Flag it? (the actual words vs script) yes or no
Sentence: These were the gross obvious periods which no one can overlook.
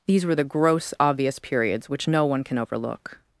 no